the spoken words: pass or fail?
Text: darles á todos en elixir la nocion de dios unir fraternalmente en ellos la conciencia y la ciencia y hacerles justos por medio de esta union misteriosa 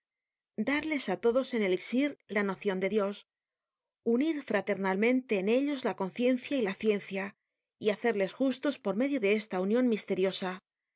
pass